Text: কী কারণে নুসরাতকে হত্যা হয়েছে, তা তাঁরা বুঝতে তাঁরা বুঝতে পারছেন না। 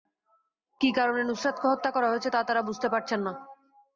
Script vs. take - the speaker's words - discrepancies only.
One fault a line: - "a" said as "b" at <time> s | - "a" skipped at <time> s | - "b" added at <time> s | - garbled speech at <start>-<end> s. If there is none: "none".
- "করা" added at 1.9 s
- "তাঁরা বুঝতে" skipped at 2.9 s